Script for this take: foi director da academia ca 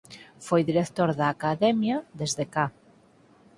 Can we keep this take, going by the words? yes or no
no